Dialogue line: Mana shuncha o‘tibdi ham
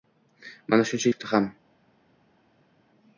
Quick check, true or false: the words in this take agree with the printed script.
true